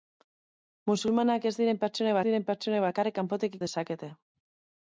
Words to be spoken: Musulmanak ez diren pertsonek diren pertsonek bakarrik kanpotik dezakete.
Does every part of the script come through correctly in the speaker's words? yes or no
yes